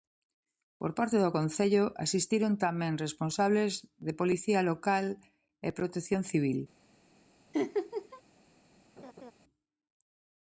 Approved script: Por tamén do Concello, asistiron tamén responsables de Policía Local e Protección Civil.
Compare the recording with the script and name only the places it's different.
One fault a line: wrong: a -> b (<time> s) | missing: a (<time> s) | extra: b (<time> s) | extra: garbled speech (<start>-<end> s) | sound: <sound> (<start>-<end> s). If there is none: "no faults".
wrong: tamén -> parte (1.0 s)
sound: laugh (7.5-8.2 s)
sound: laugh (9.0-9.3 s)